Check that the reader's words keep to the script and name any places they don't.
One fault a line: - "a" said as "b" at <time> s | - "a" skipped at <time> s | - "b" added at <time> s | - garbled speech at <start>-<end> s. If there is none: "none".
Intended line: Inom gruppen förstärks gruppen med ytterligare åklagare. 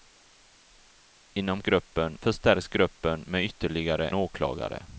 none